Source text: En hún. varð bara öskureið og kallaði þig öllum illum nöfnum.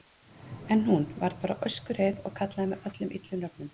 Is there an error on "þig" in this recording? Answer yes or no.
yes